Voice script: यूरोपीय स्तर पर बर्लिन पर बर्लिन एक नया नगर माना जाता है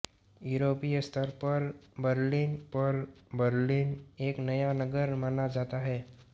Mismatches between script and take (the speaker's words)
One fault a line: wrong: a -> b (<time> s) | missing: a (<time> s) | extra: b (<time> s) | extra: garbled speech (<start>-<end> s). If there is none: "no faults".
no faults